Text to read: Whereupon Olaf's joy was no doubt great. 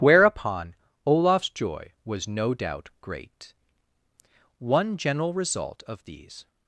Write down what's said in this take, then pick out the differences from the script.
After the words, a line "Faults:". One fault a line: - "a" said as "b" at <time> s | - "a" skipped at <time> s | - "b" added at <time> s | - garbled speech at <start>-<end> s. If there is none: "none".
Whereupon Olaf's joy was no doubt great. One general result of these
Faults:
- "One general result of these" added at 4.6 s